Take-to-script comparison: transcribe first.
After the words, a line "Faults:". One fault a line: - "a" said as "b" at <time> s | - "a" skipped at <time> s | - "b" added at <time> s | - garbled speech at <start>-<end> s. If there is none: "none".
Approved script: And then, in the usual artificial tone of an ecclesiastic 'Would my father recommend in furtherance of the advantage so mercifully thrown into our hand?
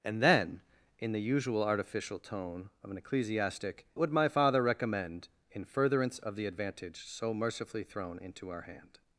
And then, in the usual artificial tone of an ecclesiastic 'Would my father recommend in furtherance of the advantage so mercifully thrown into our hand?
Faults:
none